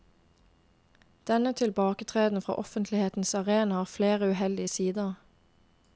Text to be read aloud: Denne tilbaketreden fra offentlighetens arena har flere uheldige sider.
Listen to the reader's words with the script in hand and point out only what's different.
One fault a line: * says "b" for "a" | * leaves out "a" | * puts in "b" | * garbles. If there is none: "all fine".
all fine